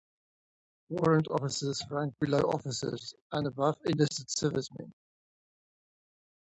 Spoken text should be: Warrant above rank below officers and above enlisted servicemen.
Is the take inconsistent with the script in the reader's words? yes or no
yes